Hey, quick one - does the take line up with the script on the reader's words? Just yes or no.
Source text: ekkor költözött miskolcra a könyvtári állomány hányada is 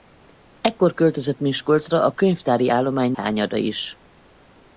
yes